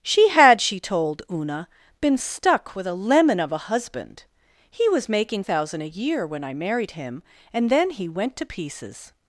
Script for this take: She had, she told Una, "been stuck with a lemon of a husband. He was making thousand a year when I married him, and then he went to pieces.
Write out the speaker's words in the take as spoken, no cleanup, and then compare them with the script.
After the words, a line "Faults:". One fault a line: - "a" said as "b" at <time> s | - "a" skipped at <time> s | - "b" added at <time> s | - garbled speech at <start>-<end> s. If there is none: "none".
She had, she told Una, "been stuck with a lemon of a husband. He was making thousand a year when I married him, and then he went to pieces.
Faults:
none